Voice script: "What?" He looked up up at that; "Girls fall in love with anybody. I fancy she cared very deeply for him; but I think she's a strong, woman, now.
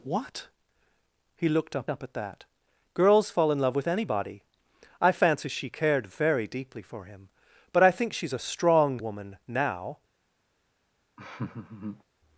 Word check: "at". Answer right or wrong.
right